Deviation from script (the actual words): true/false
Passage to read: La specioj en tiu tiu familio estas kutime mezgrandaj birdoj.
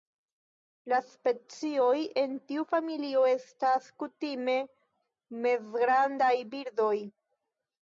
true